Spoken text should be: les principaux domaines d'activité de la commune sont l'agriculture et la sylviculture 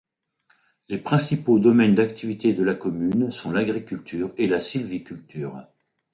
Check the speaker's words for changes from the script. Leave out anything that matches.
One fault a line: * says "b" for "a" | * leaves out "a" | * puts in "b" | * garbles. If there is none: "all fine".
all fine